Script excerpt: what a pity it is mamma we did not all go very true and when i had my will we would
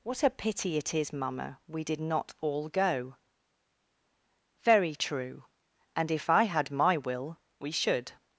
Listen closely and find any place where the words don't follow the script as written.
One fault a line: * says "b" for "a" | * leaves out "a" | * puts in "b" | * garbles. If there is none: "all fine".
* says "if" for "when"
* says "should" for "would"